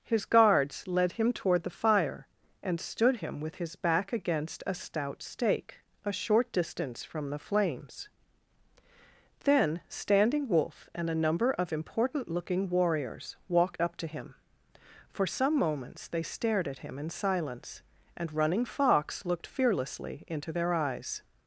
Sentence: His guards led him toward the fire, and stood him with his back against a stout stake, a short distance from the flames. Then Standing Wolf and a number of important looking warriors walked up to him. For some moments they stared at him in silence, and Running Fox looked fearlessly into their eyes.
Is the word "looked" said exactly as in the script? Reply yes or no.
yes